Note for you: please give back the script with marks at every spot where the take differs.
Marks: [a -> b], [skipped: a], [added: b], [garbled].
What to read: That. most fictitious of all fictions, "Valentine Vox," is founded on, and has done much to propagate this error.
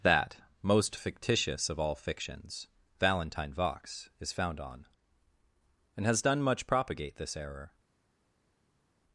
That. most fictitious of all fictions, "Valentine Vox," is [founded -> found] on, and has done much [skipped: to] propagate this error.